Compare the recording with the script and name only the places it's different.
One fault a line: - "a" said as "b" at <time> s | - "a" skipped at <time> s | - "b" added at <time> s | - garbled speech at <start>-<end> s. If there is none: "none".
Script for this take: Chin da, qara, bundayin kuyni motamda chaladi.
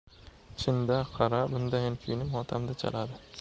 none